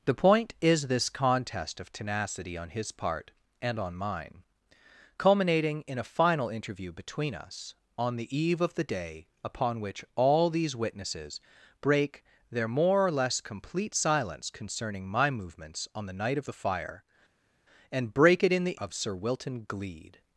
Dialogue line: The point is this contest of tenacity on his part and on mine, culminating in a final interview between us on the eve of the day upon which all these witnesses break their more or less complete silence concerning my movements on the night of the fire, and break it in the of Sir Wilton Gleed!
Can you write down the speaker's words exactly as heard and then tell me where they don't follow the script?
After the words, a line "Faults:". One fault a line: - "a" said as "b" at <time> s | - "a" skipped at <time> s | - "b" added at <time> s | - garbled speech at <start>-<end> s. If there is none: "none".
The point is this contest of tenacity on his part and on mine, culminating in a final interview between us on the eve of the day upon which all these witnesses break their more or less complete silence concerning my movements on the night of the fire, and break it in the of Sir Wilton Gleed!
Faults:
none